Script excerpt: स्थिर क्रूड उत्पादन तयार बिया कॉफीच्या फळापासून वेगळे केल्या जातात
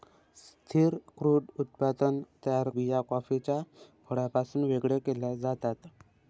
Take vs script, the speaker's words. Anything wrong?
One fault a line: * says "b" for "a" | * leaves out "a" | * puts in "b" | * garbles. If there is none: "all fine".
all fine